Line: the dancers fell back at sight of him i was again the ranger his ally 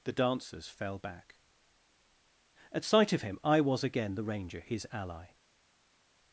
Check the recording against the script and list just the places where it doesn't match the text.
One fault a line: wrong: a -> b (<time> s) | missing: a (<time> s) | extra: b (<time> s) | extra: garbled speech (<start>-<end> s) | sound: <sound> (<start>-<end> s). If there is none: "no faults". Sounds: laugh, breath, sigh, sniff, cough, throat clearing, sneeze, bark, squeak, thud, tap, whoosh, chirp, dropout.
no faults